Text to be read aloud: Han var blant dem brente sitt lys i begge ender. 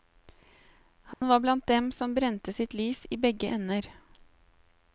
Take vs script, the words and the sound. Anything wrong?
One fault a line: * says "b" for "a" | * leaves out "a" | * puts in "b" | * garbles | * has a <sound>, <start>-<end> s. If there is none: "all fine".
* has a dropout, 1.1-1.2 s
* puts in "som"